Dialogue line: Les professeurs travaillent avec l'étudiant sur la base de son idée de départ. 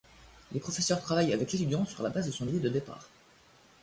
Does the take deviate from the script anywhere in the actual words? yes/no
no